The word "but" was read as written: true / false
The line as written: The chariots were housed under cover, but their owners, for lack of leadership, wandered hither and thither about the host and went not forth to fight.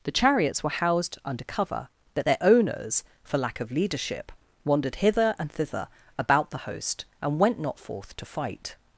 false